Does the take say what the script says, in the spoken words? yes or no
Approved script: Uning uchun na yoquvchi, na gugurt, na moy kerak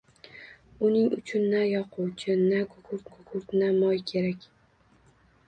no